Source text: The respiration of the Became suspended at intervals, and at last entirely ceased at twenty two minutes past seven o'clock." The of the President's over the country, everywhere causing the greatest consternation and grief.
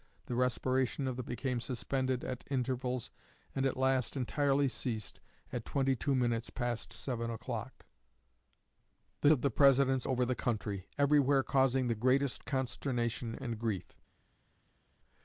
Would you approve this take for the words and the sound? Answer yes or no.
yes